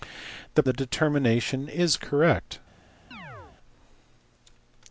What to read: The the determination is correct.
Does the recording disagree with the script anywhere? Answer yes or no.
no